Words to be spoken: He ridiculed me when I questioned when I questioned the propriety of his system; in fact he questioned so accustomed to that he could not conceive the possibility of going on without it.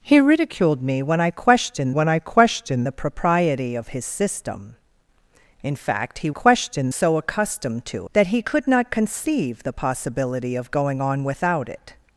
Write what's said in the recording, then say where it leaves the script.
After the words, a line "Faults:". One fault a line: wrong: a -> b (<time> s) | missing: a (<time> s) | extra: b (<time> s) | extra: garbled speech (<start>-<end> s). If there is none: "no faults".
He ridiculed me when I questioned when I questioned the propriety of his system; in fact he questioned so accustomed to that he could not conceive the possibility of going on without it.
Faults:
no faults